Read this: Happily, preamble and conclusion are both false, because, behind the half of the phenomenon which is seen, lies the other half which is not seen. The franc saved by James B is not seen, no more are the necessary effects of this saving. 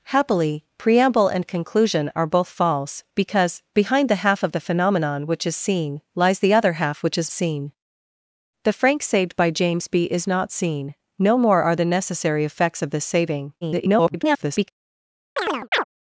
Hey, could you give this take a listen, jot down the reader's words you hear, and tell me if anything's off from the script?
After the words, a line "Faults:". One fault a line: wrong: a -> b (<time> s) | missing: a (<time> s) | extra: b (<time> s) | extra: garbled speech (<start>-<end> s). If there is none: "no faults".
Happily, preamble and conclusion are both false, because, behind the half of the phenomenon which is seen, lies the other half which is seen. The franc saved by James B is not seen, no more are the necessary effects of this saving. [garbled]
Faults:
missing: not (7.3 s)
extra: garbled speech (13.6-14.7 s)